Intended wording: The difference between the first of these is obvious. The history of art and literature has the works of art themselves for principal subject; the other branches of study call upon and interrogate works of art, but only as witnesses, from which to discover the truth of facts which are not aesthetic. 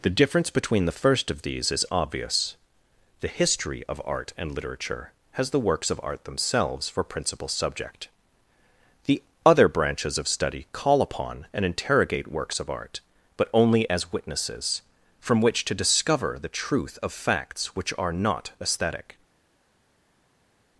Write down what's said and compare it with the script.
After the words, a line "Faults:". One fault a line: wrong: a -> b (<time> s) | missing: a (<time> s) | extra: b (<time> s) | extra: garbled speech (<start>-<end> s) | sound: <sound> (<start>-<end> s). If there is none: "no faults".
The difference between the first of these is obvious. The history of art and literature has the works of art themselves for principal subject; the other branches of study call upon and interrogate works of art, but only as witnesses, from which to discover the truth of facts which are not aesthetic.
Faults:
no faults